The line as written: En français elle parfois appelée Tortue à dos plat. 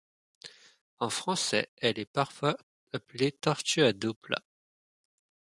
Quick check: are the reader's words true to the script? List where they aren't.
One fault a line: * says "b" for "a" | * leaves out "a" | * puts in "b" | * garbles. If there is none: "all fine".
* puts in "est"